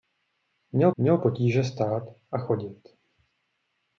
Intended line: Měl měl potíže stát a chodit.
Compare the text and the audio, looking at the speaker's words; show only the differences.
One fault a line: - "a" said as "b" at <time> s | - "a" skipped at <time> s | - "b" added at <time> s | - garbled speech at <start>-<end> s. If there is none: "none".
none